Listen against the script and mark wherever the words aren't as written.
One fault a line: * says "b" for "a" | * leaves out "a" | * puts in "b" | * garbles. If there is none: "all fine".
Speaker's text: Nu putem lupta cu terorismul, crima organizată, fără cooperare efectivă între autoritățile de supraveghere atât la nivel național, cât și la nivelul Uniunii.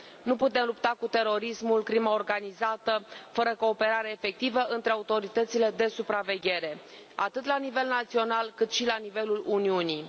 all fine